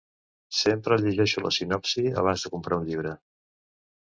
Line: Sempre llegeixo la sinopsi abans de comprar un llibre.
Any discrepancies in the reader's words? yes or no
no